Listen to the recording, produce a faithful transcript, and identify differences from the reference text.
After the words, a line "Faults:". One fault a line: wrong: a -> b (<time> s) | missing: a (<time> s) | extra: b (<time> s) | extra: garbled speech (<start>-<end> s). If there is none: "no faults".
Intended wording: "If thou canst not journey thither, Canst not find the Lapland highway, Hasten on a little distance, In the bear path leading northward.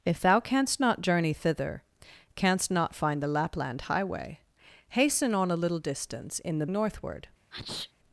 "If thou canst not journey thither, Canst not find the Lapland highway, Hasten on a little distance, In the northward.
Faults:
missing: bear path leading (6.7 s)